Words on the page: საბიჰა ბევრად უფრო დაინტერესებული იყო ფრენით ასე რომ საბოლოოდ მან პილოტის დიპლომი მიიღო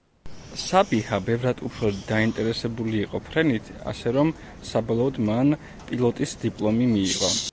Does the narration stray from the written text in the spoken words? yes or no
no